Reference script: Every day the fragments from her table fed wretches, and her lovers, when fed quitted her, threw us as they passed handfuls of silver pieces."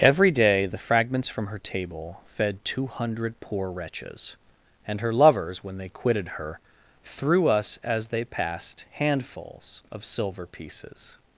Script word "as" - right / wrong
right